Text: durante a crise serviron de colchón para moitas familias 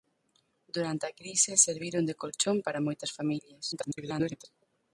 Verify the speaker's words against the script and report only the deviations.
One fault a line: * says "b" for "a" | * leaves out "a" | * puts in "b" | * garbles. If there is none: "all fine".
* garbles